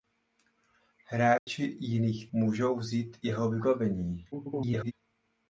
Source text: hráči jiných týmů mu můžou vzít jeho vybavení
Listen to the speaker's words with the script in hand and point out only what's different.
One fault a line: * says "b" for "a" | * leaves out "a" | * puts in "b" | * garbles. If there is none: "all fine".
* leaves out "týmů mu"
* garbles